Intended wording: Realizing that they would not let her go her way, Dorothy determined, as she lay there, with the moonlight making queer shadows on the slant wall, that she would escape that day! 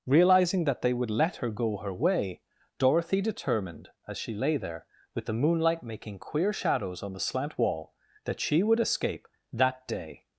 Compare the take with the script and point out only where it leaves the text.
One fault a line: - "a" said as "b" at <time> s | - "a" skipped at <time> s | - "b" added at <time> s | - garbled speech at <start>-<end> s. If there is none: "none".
- "not" skipped at 1.1 s